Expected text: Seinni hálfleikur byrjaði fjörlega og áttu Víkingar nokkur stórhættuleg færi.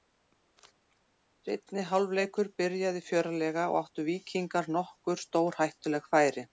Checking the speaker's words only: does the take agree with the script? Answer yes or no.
yes